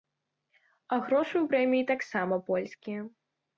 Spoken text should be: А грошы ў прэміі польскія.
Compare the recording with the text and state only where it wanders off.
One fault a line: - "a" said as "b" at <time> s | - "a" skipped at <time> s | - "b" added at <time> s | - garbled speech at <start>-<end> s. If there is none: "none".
- "таксама" added at 1.9 s